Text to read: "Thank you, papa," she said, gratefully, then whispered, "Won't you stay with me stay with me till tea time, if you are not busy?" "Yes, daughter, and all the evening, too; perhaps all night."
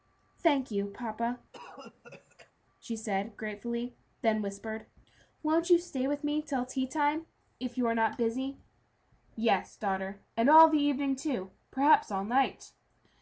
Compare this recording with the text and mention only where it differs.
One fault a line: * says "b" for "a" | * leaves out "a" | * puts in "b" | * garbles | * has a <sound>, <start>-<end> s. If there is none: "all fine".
* has a cough, 1.5-2.5 s
* leaves out "stay with me"